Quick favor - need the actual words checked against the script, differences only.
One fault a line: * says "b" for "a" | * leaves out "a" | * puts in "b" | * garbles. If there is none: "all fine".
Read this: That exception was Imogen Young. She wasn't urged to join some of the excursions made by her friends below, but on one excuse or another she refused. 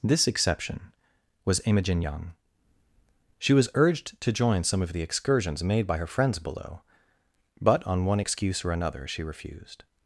* says "This" for "That"
* says "was" for "wasn't"